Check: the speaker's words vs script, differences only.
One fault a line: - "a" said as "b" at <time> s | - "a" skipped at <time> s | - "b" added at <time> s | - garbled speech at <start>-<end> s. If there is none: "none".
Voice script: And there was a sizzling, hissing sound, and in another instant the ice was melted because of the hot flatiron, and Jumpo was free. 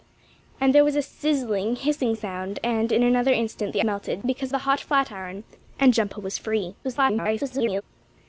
- "ice was" skipped at 3.8 s
- "of" skipped at 4.5 s
- garbled speech at 6.8-7.8 s